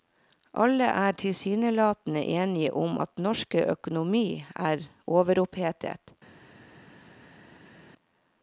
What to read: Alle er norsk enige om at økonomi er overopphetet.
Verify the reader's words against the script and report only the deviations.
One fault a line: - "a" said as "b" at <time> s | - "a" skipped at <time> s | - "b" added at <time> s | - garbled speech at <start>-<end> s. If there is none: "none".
- "norsk" said as "tilsynelatende" at 1.1 s
- "norsk" added at 3.2 s